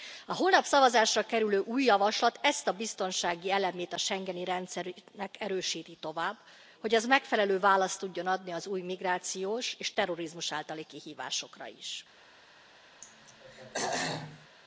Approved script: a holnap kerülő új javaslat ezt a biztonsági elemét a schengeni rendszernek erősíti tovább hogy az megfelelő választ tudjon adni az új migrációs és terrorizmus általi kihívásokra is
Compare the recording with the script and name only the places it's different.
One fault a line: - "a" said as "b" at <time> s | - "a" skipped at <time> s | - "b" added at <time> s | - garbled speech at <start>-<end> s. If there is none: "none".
- "szavazásra" added at 0.7 s